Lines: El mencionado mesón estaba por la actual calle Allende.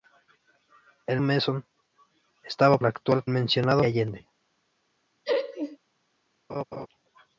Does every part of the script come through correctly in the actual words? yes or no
no